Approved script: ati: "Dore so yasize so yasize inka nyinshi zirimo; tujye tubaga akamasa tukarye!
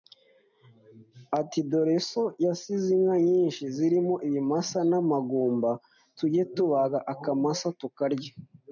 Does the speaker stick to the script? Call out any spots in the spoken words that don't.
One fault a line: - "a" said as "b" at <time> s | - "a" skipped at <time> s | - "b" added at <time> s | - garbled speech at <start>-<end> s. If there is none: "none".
- "so yasize" skipped at 2.9 s
- "ibimasa n'amagumba" added at 4.3 s